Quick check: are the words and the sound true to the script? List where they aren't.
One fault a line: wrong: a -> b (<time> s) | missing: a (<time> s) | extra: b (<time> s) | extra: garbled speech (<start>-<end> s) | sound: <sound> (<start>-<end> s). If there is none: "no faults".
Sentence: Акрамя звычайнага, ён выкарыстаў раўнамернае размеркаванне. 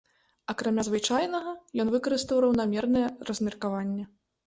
no faults